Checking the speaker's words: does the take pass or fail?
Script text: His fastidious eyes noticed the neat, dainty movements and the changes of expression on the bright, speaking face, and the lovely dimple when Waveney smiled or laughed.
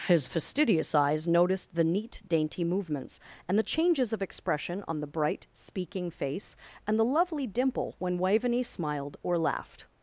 pass